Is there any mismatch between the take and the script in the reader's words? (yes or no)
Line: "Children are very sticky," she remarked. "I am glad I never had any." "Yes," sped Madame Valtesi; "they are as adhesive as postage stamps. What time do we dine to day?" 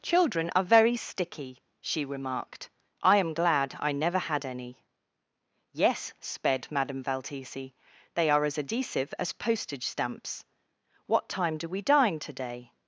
no